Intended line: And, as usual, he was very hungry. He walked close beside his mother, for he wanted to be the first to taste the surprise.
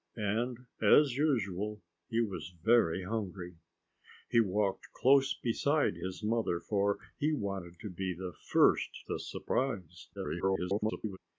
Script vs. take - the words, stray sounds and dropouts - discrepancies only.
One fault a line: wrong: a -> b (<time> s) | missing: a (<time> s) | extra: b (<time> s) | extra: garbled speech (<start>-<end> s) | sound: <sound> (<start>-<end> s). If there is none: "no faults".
missing: to taste (8.9 s)
extra: garbled speech (10.1-11.2 s)